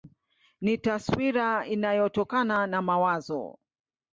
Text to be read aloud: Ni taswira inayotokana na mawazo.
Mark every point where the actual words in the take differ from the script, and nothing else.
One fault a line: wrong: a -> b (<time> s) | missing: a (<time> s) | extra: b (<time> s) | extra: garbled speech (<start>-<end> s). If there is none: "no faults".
no faults